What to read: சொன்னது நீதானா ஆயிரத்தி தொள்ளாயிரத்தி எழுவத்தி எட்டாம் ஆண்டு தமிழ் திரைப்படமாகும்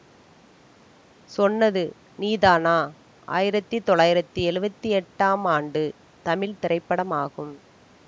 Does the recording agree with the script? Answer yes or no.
yes